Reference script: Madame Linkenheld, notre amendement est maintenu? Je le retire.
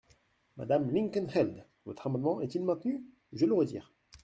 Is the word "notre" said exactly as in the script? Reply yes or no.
no